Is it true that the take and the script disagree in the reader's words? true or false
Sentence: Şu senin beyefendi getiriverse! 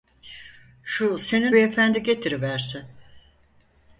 false